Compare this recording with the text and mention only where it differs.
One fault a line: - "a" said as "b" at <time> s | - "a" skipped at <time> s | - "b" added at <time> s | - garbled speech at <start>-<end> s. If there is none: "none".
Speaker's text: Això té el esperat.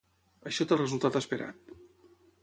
- "resultat" added at 0.8 s